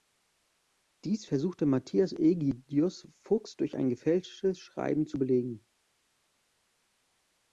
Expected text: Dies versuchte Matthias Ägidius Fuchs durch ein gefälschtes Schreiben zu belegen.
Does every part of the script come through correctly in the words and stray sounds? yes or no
yes